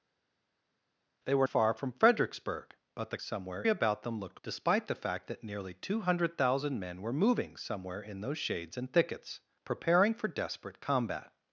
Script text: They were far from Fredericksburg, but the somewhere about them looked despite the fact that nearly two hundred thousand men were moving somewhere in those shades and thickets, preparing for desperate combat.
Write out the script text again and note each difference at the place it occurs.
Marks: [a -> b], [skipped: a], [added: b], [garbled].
They were far from Fredericksburg, but the somewhere about them looked despite the fact that nearly two hundred thousand men were moving somewhere in those shades and thickets, preparing for desperate combat.